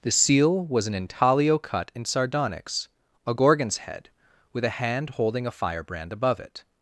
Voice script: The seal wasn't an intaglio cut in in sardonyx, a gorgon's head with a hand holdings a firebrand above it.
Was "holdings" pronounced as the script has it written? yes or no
no